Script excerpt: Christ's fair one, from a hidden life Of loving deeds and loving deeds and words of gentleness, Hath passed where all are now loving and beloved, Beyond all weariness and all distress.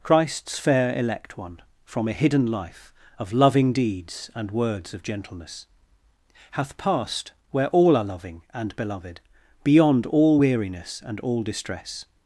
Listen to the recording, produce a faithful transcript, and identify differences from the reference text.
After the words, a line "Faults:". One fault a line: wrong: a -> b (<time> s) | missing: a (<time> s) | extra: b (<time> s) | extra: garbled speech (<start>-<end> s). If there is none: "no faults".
Christ's fair elect one, from a hidden life Of loving deeds and words of gentleness, Hath passed where all are loving and beloved, Beyond all weariness and all distress.
Faults:
extra: elect (1.0 s)
missing: loving deeds and (4.5 s)
missing: now (8.0 s)